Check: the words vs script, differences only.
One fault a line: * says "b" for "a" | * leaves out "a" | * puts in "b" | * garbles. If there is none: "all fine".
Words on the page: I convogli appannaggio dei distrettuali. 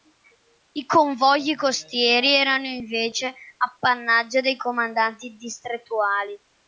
* puts in "costieri erano invece"
* puts in "comandanti"